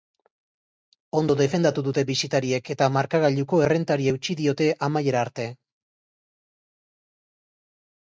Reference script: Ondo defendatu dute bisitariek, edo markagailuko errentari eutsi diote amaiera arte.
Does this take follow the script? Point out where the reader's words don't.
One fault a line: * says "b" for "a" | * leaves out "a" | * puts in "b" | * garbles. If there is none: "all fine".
* says "eta" for "edo"